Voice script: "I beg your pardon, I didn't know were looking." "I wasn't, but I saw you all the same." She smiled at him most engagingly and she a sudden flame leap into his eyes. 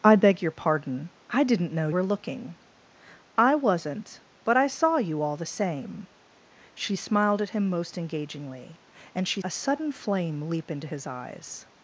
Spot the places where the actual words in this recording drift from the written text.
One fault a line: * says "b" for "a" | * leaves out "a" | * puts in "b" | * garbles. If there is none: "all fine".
all fine